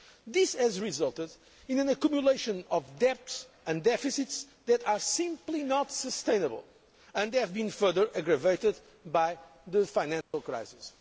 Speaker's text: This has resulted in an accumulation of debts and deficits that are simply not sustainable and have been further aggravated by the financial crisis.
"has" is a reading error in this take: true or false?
false